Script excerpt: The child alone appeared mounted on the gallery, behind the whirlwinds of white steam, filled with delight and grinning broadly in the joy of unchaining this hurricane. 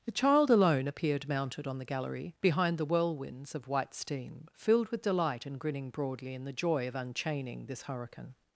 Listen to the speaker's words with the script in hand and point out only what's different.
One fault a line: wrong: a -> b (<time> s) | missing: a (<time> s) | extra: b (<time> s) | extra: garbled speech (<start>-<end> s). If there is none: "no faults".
no faults